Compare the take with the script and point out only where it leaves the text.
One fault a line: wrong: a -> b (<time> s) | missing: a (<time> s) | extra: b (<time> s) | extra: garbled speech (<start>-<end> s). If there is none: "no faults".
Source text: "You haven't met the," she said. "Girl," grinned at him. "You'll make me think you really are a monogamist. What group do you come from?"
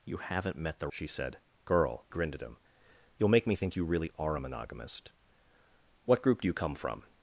no faults